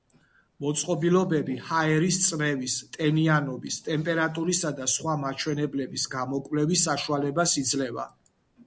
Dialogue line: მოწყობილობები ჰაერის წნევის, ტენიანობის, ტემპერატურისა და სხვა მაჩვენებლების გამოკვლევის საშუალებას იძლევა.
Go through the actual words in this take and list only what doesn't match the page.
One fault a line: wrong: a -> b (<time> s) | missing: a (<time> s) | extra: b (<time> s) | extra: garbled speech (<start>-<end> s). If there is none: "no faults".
no faults